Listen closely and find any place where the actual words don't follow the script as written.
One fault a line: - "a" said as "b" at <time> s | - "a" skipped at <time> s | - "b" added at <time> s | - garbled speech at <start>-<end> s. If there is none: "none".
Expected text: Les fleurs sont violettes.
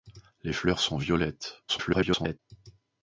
- garbled speech at 1.7-2.4 s